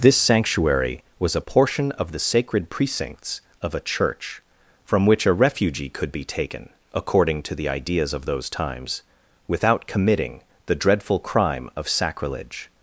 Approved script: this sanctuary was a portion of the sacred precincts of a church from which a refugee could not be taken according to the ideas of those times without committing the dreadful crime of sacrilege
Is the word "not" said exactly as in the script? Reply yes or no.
no